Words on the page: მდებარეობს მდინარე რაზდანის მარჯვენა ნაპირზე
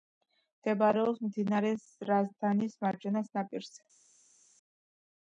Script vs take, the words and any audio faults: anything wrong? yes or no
no